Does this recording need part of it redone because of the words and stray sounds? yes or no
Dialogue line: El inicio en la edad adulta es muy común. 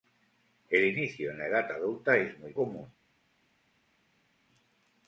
no